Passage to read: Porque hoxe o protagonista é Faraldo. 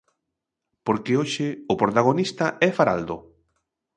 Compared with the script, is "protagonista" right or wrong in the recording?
right